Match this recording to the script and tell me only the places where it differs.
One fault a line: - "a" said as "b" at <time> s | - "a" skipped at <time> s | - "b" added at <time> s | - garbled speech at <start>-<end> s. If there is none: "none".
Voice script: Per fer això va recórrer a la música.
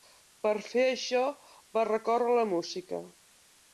none